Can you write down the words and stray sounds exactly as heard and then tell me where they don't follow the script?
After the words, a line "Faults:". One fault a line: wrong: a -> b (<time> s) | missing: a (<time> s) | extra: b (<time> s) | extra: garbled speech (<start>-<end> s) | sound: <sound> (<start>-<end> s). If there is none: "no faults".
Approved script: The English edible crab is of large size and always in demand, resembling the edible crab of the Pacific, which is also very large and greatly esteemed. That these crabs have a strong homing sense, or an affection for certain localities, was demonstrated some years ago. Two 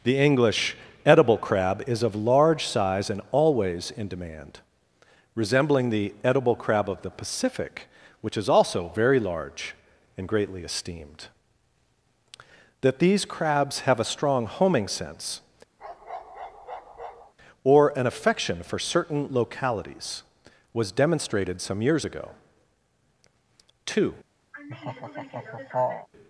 The English edible crab is of large size and always in demand, resembling the edible crab of the Pacific, which is also very large and greatly esteemed. That these crabs have a strong homing sense, or an affection for certain localities, was demonstrated some years ago. Two
Faults:
sound: bark (15.8-17.3 s)
sound: laugh (24.5-26.1 s)